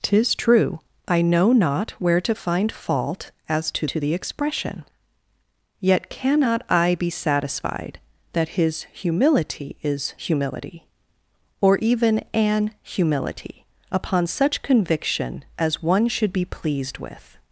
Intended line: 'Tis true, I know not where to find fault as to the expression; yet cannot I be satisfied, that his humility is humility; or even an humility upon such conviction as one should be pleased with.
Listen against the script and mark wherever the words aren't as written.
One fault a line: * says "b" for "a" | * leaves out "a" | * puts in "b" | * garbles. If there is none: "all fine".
* puts in "to"